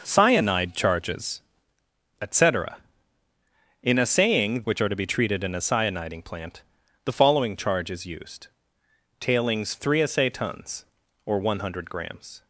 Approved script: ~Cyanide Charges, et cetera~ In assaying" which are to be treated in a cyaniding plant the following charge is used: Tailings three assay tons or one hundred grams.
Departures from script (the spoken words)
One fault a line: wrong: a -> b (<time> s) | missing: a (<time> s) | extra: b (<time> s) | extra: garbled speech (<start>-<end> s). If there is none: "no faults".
no faults